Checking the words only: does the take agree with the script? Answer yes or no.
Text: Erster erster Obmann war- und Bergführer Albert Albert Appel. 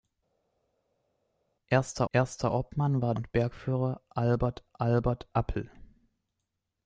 yes